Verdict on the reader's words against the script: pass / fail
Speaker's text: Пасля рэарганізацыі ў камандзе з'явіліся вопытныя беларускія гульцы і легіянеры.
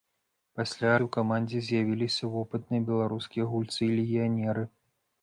fail